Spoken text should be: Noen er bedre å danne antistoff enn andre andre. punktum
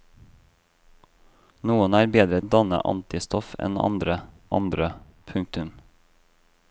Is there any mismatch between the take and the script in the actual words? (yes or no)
no